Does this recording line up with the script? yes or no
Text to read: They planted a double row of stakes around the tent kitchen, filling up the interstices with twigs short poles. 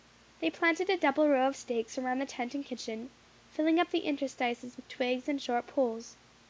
no